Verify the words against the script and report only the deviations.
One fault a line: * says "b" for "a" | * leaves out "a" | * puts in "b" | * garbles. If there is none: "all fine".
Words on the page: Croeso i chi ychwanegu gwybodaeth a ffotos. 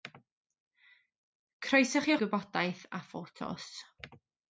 * leaves out "ychwanegu"